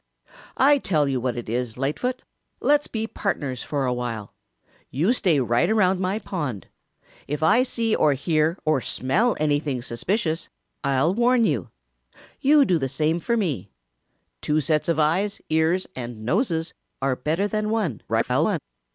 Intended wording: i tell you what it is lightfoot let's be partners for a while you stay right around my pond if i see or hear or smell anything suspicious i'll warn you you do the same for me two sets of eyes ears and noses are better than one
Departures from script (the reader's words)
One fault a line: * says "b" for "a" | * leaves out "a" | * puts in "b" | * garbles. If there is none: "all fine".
* garbles